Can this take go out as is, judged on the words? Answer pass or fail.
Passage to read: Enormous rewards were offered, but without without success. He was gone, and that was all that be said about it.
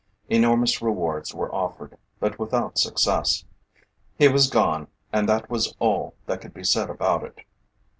fail